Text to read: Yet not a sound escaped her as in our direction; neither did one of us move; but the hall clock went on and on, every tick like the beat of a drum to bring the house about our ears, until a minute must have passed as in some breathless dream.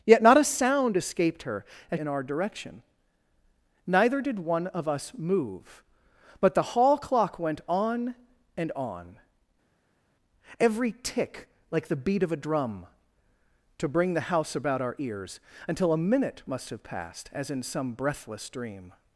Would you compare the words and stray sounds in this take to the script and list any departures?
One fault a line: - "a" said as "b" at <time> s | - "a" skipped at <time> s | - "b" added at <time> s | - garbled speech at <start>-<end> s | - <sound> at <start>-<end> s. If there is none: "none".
none